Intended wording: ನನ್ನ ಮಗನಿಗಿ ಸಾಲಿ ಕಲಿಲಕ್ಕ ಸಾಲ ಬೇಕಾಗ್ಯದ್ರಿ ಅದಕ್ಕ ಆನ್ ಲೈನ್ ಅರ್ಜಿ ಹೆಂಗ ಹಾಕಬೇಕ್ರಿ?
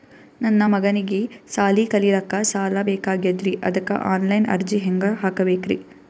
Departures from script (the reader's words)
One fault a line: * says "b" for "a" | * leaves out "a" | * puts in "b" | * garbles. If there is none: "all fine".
all fine